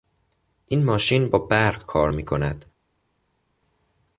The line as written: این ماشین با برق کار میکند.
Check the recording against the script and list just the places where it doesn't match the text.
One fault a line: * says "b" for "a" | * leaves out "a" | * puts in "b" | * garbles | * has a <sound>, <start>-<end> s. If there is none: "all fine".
all fine